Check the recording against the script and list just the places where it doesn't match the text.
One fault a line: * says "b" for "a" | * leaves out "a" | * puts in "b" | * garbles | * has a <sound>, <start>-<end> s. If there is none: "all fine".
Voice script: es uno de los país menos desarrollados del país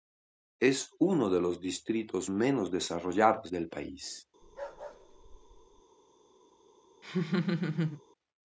* says "distritos" for "país"
* has a bark, 4.4-5.8 s
* has a laugh, 7.0-8.0 s